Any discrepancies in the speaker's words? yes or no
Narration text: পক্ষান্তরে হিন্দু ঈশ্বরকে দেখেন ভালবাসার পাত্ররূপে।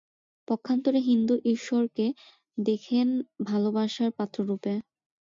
no